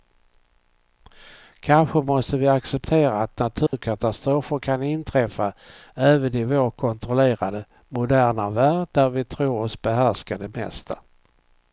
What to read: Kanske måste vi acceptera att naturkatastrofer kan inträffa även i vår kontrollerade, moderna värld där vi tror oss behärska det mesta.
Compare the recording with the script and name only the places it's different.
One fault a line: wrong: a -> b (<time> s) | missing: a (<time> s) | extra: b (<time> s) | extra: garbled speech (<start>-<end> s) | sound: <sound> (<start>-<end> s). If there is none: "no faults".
sound: dropout (3.7-3.7 s)